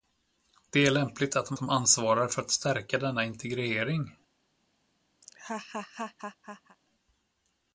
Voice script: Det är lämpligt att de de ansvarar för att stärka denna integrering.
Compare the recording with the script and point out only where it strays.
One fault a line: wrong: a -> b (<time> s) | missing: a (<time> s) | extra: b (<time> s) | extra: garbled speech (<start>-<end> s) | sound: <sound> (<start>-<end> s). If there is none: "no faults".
sound: laugh (5.2-6.8 s)